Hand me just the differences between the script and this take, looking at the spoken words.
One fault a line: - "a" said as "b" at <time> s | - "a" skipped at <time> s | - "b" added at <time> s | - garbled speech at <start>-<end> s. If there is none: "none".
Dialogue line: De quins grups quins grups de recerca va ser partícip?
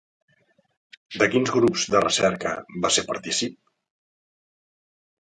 - "quins grups" skipped at 1.8 s